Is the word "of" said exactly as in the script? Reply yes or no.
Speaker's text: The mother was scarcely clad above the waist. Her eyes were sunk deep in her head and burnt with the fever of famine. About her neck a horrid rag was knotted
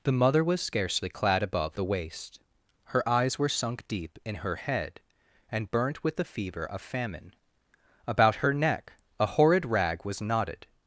yes